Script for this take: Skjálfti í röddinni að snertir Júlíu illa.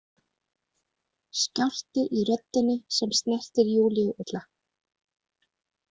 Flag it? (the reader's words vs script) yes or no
yes